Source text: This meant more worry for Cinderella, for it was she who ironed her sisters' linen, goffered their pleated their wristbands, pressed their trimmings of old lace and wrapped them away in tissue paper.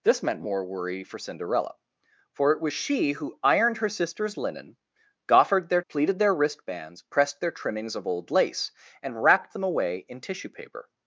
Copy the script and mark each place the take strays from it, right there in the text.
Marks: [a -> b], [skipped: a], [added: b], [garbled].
This meant more worry for Cinderella, for it was she who ironed her sisters' linen, goffered their pleated their wristbands, pressed their trimmings of old lace and wrapped them away in tissue paper.